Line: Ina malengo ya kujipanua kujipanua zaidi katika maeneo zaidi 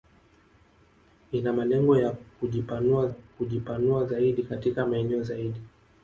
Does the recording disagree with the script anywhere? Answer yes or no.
no